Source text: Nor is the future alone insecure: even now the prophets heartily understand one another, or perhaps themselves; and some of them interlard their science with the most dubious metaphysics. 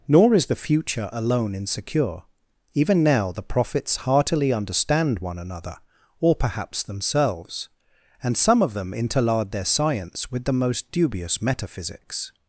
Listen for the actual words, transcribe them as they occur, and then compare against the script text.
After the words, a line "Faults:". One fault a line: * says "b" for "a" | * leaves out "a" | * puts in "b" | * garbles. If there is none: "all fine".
Nor is the future alone insecure: even now the prophets heartily understand one another, or perhaps themselves; and some of them interlard their science with the most dubious metaphysics.
Faults:
all fine